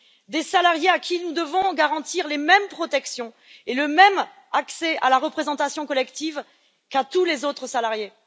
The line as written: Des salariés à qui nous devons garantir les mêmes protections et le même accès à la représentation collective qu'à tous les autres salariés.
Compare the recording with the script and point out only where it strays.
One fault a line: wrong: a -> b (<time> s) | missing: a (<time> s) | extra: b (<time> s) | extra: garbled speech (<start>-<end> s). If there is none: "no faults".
no faults